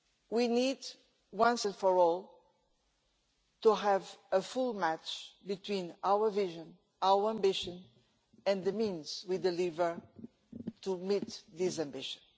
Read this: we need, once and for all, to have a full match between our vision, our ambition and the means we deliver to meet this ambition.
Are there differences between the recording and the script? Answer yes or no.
no